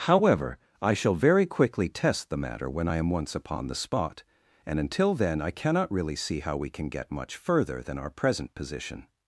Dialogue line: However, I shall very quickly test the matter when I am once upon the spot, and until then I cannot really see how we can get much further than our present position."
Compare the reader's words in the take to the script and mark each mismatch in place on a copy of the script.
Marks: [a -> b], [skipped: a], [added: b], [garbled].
However, I shall very quickly test the matter when I am once upon the spot, and until then I cannot really see how we can get much further than our present position."